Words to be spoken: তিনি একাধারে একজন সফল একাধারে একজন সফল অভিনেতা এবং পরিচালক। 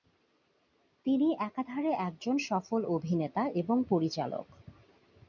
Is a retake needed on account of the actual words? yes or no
yes